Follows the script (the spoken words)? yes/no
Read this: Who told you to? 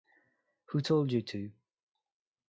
yes